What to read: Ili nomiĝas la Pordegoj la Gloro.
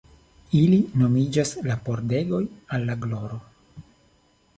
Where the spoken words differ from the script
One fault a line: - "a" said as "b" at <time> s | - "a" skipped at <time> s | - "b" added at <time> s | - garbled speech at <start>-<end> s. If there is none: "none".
- "al" added at 2.8 s